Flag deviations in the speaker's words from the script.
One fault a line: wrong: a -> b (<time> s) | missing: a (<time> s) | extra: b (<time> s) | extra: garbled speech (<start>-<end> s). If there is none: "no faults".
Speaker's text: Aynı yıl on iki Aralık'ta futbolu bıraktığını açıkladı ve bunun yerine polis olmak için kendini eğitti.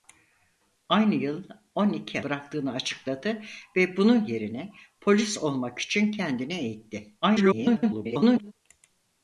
missing: Aralık'ta futbolu (2.2 s)
extra: garbled speech (7.2-8.5 s)